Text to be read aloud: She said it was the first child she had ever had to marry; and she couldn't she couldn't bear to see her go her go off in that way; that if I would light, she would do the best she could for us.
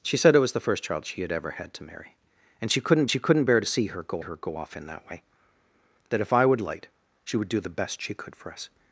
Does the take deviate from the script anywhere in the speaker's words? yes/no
no